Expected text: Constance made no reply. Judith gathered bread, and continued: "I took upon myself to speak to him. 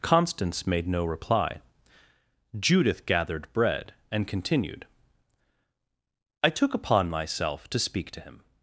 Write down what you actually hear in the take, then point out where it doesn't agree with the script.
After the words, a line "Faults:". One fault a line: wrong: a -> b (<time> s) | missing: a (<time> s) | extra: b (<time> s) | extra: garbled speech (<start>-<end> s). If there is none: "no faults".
Constance made no reply. Judith gathered bread, and continued: "I took upon myself to speak to him.
Faults:
no faults